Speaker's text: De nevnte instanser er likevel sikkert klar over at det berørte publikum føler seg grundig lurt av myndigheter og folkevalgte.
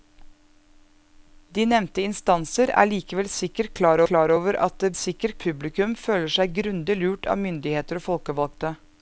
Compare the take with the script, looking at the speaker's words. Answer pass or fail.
fail